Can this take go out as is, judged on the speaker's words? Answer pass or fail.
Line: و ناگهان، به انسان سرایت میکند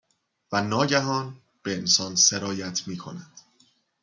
pass